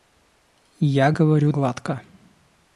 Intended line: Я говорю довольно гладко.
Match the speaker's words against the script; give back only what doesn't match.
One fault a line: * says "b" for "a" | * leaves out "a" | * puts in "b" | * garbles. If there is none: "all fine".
* leaves out "довольно"